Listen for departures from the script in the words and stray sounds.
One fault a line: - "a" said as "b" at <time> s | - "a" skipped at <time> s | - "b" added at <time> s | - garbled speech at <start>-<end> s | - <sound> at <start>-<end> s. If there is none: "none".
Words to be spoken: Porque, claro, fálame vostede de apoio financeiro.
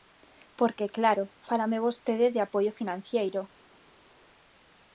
none